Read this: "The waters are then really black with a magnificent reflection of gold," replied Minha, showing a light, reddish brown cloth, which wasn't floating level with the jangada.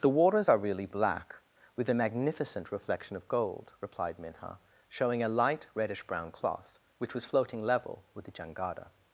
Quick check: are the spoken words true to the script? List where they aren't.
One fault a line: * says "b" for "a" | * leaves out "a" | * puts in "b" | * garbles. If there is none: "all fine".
* leaves out "then"
* says "was" for "wasn't"